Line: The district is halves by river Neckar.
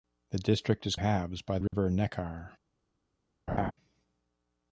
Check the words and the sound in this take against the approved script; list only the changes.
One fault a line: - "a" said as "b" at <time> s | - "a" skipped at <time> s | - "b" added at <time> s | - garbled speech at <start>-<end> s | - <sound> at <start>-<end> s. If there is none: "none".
- dropout at 1.7-1.7 s
- laugh at 3.5-3.7 s